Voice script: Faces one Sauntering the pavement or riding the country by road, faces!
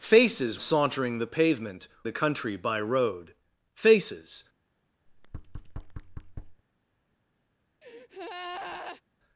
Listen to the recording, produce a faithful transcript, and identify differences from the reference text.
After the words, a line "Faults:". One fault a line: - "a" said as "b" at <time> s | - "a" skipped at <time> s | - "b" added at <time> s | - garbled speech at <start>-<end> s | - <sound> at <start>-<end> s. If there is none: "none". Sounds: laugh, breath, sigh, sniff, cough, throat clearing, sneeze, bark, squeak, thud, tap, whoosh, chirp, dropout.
Faces Sauntering the pavement the country by road, faces!
Faults:
- "one" skipped at 0.6 s
- "or riding" skipped at 1.9 s
- thud at 5.1-6.6 s
- breath at 7.8-9.0 s